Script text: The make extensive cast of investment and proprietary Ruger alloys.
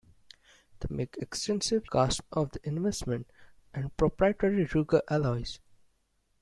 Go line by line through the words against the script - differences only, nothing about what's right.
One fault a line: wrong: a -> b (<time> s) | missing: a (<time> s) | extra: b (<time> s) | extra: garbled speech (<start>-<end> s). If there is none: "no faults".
no faults